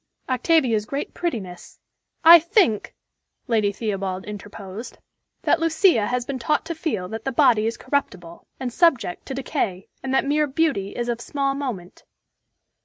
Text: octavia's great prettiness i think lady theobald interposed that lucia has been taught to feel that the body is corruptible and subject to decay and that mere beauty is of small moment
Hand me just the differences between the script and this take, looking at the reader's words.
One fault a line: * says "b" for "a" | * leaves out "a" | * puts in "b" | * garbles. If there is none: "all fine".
all fine